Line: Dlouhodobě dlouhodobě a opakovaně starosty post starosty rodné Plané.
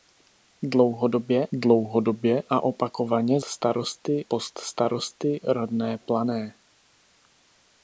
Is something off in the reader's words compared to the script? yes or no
no